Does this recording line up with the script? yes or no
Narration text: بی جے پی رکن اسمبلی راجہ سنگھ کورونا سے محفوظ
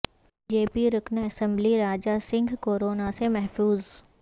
yes